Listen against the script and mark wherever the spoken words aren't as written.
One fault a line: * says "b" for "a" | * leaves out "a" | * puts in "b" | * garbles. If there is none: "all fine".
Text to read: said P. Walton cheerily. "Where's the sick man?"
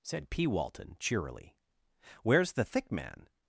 * says "thick" for "sick"